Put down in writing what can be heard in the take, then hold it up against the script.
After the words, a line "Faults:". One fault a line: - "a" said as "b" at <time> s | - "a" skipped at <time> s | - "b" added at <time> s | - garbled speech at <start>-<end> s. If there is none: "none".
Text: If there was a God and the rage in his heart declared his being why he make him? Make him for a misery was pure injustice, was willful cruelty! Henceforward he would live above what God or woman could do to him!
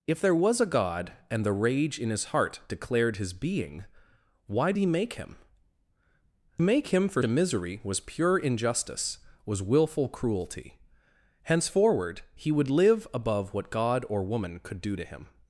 If there was a God and the rage in his heart declared his being why he make him? Make him for a misery was pure injustice, was willful cruelty! Henceforward he would live above what God or woman could do to him!
Faults:
none